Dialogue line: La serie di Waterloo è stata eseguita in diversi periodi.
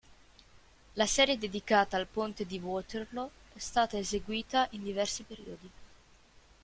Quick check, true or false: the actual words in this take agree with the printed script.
false